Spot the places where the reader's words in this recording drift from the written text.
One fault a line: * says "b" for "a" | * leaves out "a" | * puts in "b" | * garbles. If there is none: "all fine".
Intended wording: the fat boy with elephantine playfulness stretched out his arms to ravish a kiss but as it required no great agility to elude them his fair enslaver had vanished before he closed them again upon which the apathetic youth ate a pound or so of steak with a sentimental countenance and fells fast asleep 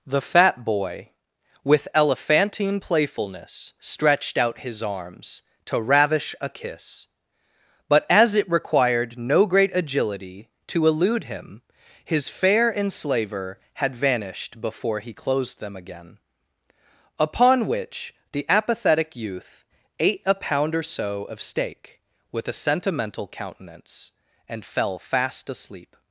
* says "him" for "them"
* says "fell" for "fells"